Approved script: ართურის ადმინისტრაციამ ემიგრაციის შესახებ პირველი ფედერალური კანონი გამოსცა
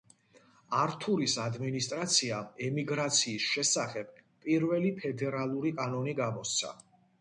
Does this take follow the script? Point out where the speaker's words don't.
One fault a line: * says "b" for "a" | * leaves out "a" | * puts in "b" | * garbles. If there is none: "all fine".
all fine